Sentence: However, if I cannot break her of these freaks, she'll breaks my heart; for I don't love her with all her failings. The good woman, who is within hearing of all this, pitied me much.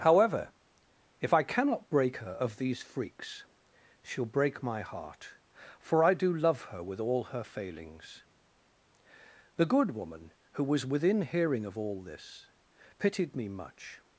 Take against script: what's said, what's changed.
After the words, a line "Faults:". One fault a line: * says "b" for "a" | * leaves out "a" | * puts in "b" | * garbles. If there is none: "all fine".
However, if I cannot break her of these freaks, she'll break my heart; for I do love her with all her failings. The good woman, who was within hearing of all this, pitied me much.
Faults:
* says "break" for "breaks"
* says "do" for "don't"
* says "was" for "is"